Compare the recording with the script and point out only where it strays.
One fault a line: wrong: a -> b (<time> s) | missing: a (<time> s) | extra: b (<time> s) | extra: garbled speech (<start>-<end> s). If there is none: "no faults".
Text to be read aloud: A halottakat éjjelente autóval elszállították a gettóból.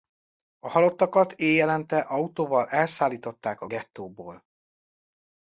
no faults